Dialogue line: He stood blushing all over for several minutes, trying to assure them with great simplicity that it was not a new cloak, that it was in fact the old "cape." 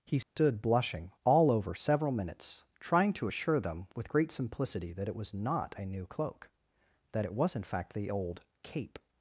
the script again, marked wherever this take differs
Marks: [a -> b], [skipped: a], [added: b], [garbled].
He stood blushing all over [skipped: for] several minutes, trying to assure them with great simplicity that it was not a new cloak, that it was in fact the old "cape."